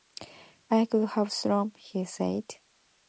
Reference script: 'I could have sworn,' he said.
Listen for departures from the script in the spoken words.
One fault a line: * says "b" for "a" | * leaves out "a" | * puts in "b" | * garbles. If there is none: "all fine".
all fine